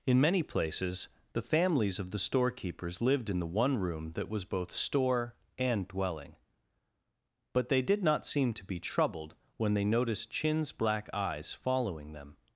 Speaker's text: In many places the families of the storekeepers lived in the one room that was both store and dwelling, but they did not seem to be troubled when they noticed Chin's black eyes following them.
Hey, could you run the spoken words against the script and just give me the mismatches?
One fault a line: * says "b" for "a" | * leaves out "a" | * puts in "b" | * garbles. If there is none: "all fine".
all fine